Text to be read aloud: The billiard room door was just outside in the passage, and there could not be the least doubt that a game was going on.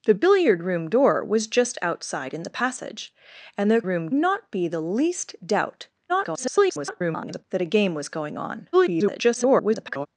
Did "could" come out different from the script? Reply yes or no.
yes